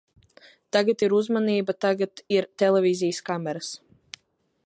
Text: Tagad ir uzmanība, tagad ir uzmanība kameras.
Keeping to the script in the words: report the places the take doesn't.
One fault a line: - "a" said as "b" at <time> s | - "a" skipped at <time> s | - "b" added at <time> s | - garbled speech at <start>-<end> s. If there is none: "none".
- "uzmanība" said as "televīzijas" at 2.6 s